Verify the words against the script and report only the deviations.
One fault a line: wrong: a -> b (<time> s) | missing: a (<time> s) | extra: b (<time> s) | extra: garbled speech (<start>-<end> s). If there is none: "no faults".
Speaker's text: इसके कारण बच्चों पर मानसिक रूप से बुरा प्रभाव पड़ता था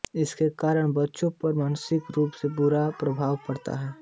wrong: था -> है (3.8 s)